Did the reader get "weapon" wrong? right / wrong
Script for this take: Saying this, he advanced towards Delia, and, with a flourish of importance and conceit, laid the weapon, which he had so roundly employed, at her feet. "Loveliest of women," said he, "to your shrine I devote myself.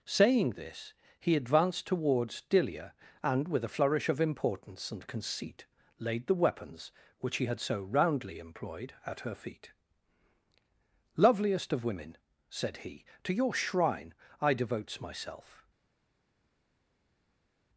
wrong